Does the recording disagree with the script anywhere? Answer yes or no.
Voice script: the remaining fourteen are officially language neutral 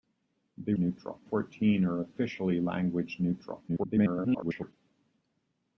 yes